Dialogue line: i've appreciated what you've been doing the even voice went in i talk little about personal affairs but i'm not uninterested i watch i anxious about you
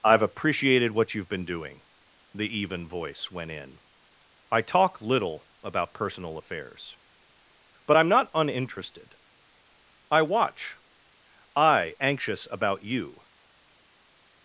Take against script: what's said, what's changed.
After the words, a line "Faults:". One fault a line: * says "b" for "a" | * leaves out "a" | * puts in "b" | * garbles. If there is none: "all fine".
i've appreciated what you've been doing the even voice went in i talk little about personal affairs but i'm not uninterested i watch i anxious about you
Faults:
all fine